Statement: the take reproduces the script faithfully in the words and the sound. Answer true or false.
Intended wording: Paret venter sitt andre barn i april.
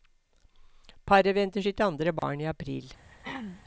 false